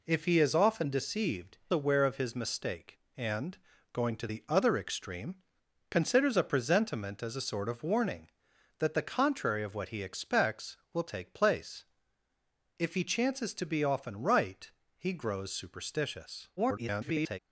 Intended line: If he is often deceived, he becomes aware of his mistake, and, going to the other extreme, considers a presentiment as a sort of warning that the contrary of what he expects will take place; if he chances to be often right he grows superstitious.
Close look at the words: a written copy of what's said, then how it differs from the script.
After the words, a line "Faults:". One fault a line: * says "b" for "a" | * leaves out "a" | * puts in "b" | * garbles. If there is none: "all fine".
If he is often deceived, aware of his mistake, and, going to the other extreme, considers a presentiment as a sort of warning that the contrary of what he expects will take place; if he chances to be often right he grows superstitious. [garbled]
Faults:
* leaves out "he becomes"
* garbles